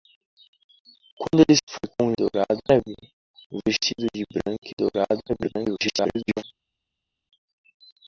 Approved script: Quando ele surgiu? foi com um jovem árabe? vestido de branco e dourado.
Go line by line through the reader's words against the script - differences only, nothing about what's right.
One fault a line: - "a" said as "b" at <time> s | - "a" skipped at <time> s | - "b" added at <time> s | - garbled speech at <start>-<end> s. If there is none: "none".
- "surgiu" skipped at 1.6 s
- "jovem" said as "dourado" at 2.1 s
- garbled speech at 5.3-6.4 s